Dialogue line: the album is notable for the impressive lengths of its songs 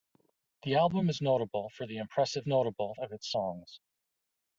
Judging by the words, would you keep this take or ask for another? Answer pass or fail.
fail